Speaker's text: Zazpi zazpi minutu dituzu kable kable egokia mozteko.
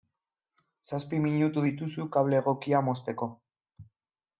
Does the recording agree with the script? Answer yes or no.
no